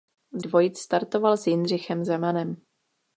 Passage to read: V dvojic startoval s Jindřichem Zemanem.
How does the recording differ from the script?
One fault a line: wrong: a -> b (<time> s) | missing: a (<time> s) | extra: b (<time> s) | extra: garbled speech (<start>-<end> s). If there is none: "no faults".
no faults